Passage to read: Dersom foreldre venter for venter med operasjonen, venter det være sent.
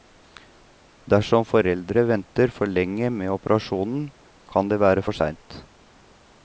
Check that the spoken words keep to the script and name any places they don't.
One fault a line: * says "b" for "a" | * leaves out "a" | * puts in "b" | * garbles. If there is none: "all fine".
* says "lenge" for "venter"
* says "kan" for "venter"
* puts in "for"